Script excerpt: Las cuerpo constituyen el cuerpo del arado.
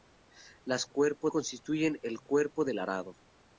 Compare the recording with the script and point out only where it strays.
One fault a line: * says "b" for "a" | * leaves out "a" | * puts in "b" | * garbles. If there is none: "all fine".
all fine